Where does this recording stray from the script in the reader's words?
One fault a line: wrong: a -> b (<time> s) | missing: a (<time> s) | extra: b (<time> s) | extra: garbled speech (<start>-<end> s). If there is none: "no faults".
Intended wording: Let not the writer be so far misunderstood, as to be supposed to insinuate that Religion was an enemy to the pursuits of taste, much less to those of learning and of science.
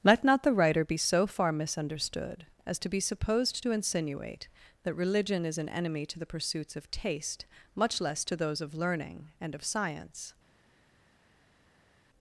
wrong: was -> is (5.4 s)